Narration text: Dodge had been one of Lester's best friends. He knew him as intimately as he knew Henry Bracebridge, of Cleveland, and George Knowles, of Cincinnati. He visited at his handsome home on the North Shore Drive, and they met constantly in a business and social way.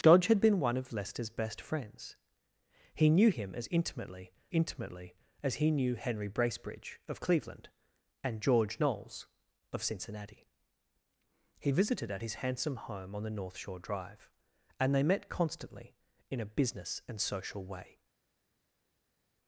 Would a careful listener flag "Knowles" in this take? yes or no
no